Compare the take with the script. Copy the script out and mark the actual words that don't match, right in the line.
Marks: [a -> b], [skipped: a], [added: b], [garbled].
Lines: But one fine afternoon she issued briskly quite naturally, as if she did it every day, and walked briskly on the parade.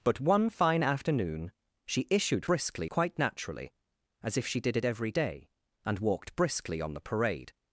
But one fine afternoon she issued briskly quite naturally, as if she did it every day, and walked briskly on the parade.